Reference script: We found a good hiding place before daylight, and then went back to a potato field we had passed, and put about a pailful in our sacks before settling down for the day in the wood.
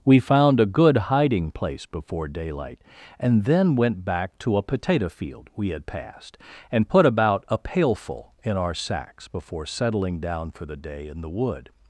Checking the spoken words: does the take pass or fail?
pass